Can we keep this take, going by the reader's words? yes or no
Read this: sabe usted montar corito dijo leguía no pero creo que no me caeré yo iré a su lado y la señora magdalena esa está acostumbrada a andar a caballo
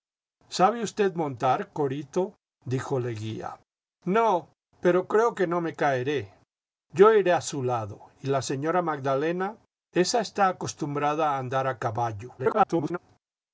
no